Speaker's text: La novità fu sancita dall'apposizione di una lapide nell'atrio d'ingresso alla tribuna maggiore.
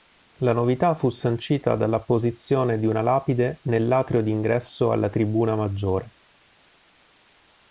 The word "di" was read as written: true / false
true